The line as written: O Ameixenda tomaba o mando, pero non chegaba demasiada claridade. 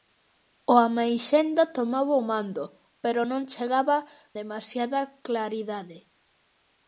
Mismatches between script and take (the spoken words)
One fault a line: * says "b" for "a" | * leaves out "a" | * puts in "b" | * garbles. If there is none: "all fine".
all fine